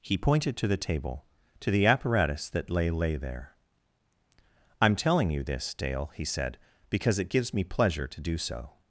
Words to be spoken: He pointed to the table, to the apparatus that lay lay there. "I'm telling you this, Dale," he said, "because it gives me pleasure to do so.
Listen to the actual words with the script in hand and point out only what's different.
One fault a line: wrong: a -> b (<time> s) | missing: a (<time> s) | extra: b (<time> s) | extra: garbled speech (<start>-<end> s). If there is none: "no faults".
no faults